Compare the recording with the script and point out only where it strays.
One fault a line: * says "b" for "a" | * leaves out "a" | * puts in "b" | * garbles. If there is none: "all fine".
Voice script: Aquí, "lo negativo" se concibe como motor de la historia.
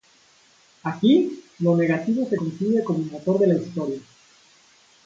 all fine